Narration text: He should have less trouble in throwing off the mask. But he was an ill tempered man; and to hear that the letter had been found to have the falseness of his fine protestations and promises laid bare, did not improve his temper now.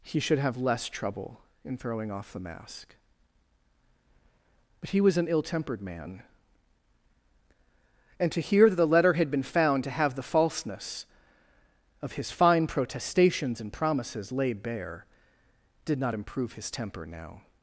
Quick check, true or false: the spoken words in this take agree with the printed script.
true